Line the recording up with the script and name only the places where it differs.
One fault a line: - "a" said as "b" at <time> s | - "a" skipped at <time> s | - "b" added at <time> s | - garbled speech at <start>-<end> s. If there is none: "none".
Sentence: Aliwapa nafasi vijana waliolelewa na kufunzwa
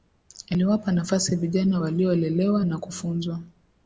none